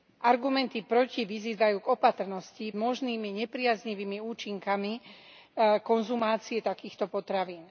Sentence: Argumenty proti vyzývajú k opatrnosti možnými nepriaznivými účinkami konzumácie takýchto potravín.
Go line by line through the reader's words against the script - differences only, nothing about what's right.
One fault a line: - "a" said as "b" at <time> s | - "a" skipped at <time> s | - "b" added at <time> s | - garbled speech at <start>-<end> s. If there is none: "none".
none